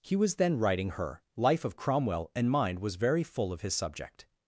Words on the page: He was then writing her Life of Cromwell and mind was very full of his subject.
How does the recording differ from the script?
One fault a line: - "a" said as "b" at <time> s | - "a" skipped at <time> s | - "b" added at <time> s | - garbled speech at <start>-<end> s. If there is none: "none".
none